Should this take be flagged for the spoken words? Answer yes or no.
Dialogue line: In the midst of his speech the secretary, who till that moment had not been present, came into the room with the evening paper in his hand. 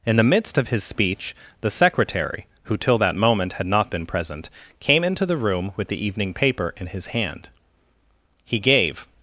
yes